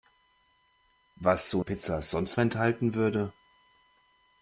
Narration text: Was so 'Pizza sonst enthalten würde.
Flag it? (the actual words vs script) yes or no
no